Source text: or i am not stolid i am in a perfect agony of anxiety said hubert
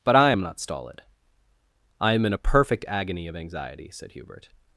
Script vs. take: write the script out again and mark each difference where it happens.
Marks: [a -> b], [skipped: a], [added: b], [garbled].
[or -> but] i am not stolid i am in a perfect agony of anxiety said hubert